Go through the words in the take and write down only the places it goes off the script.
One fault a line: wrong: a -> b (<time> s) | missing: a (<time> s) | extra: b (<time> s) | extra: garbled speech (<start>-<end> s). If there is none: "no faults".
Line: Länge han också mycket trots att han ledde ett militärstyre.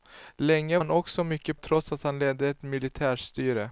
no faults